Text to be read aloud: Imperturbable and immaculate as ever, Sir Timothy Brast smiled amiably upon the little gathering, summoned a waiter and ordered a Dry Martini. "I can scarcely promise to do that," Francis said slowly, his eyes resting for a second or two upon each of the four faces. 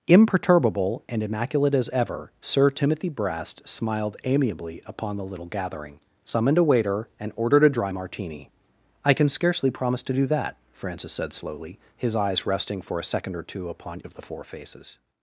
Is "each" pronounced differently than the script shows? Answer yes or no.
yes